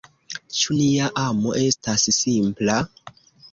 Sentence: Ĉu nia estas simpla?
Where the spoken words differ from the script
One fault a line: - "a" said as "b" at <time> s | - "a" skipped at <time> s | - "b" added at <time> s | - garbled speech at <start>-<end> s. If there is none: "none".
- "amo" added at 1.2 s